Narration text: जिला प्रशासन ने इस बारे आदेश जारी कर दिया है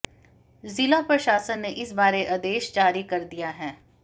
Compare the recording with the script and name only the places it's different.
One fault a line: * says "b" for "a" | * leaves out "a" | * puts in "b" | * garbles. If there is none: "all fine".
all fine